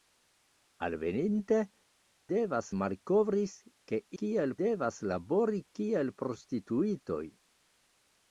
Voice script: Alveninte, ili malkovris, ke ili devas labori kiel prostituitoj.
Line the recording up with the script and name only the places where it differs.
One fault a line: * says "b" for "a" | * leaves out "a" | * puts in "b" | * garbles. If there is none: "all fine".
* says "devas" for "ili"
* says "kiel" for "ili"